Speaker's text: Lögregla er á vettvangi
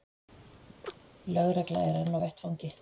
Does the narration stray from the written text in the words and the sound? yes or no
yes